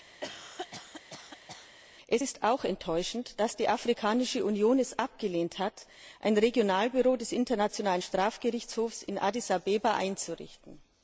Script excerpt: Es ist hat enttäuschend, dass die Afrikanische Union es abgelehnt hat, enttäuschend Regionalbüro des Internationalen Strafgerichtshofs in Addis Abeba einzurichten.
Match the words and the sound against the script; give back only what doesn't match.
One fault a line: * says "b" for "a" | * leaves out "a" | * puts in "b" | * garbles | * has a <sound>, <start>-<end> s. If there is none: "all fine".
* has a cough, 0.2-1.8 s
* says "auch" for "hat"
* says "ein" for "enttäuschend"